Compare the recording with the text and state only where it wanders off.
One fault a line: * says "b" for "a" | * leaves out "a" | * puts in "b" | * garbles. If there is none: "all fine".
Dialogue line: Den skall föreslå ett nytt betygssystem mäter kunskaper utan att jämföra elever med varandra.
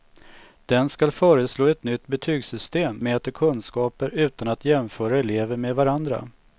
all fine